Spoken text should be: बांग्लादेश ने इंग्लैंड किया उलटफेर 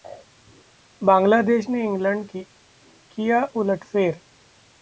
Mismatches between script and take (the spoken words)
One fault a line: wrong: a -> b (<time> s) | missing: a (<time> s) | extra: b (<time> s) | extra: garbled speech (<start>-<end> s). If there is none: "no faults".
no faults